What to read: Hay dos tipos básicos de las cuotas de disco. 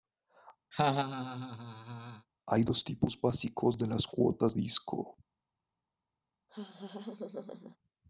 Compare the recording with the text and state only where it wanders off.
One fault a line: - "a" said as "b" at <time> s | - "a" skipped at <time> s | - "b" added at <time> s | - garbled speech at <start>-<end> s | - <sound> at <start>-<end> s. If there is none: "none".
- laugh at 0.7-2.3 s
- "de" skipped at 4.6 s
- laugh at 6.5-7.8 s